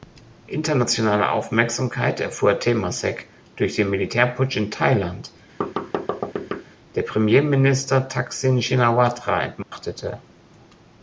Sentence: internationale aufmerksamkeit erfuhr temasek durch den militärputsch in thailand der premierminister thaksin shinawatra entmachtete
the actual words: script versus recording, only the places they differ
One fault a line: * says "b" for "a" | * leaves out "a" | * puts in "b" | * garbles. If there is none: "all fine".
all fine